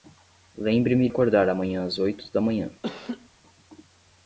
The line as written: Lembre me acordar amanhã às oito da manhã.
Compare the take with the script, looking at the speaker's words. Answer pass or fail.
pass